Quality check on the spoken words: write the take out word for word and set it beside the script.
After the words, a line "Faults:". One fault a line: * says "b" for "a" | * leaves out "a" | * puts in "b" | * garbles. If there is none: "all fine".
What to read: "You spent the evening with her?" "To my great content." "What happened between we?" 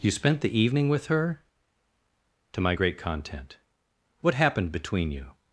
"You spent the evening with her?" "To my great content." "What happened between you?"
Faults:
* says "you" for "we"